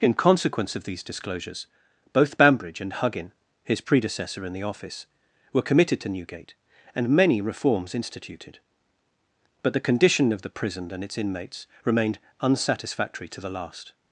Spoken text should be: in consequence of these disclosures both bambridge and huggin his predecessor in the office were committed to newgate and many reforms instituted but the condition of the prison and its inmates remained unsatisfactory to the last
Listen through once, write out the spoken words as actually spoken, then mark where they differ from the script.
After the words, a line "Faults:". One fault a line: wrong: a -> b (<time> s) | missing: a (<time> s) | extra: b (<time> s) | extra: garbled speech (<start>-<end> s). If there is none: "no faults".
in consequence of these disclosures both bambridge and huggin his predecessor in the office were committed to newgate and many reforms instituted but the condition of the prison and its inmates remained unsatisfactory to the last
Faults:
no faults